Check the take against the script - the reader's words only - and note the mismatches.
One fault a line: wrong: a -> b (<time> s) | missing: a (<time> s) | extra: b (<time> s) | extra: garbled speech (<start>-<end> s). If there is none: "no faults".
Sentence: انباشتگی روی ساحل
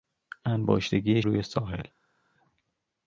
no faults